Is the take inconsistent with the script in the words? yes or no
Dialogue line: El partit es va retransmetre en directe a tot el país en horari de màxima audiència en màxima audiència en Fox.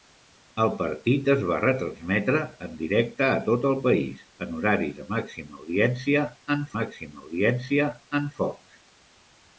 no